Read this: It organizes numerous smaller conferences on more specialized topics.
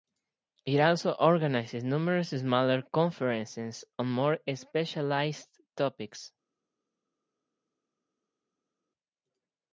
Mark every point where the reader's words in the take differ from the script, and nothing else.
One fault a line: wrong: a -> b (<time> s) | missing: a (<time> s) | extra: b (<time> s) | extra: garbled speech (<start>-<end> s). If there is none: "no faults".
extra: also (0.8 s)